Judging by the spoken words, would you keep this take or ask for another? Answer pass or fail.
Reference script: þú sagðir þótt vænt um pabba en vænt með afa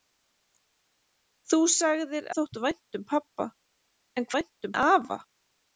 pass